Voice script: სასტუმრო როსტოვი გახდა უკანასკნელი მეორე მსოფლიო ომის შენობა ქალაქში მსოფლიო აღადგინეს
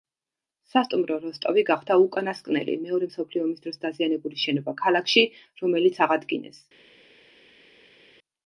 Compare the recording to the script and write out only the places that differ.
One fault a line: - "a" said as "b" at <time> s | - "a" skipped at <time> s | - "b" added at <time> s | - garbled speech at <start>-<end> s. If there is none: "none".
- "დროს დაზიანებული" added at 3.7 s
- "მსოფლიო" said as "რომელიც" at 5.7 s